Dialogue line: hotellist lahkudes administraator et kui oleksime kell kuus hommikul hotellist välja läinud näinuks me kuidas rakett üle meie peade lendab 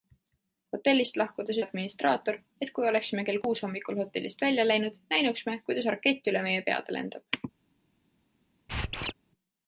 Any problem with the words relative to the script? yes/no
no